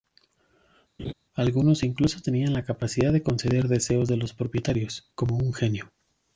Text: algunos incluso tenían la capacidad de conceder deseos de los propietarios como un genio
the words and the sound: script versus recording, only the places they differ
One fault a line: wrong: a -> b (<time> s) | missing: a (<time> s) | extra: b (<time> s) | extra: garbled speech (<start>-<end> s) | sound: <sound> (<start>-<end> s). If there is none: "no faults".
sound: laugh (1.0-1.1 s)